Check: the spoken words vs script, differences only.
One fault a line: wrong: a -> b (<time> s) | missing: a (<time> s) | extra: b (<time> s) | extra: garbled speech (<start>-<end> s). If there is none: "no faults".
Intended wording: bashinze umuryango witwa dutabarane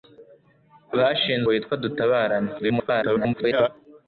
missing: umuryango (1.5 s)
extra: garbled speech (2.6-3.7 s)